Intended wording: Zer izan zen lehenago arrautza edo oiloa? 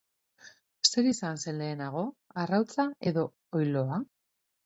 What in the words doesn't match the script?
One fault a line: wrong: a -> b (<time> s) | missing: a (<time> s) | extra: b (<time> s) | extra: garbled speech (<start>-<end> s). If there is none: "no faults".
no faults